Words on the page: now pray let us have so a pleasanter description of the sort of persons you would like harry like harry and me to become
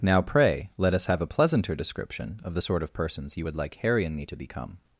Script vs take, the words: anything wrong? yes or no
yes